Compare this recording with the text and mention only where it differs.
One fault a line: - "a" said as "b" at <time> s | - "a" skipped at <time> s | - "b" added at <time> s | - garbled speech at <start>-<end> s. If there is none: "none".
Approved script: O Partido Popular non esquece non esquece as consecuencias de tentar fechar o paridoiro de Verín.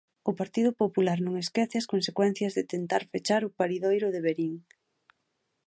- "non esquece" skipped at 1.8 s